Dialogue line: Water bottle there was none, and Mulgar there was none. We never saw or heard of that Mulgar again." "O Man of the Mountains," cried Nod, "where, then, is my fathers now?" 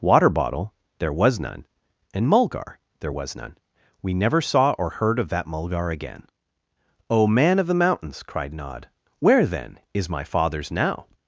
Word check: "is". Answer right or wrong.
right